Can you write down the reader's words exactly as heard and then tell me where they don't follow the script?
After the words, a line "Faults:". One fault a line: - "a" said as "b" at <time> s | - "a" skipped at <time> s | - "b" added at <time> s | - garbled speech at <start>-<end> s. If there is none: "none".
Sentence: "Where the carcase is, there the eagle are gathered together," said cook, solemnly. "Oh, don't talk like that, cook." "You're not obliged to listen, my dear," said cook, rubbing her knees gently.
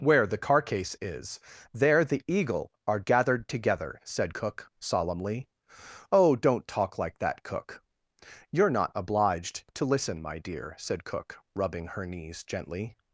"Where the carcase is, there the eagle are gathered together," said cook, solemnly. "Oh, don't talk like that, cook." "You're not obliged to listen, my dear," said cook, rubbing her knees gently.
Faults:
none